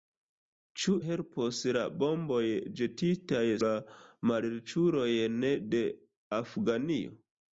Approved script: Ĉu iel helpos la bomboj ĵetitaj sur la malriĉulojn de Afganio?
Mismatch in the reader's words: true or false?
true